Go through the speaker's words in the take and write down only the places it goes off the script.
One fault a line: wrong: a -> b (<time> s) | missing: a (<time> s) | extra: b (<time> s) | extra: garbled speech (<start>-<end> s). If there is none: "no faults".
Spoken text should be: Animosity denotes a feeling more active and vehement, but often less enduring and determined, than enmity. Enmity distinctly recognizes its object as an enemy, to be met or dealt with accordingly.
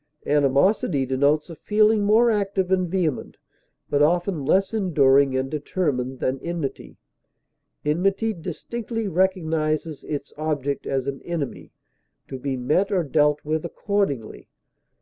no faults